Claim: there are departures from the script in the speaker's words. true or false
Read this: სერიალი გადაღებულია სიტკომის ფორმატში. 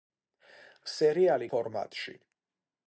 true